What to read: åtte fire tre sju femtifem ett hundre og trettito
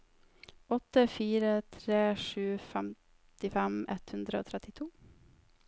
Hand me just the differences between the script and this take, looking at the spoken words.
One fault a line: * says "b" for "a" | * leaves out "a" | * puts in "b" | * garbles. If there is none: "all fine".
all fine